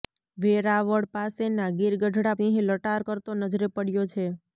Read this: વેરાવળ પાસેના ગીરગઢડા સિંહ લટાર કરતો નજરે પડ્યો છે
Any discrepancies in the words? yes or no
no